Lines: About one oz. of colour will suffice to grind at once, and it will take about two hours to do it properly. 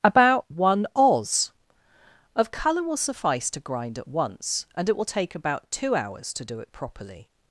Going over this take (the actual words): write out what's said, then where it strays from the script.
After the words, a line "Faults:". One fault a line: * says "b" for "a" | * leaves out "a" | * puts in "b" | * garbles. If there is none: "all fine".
About one oz. of colour will suffice to grind at once, and it will take about two hours to do it properly.
Faults:
all fine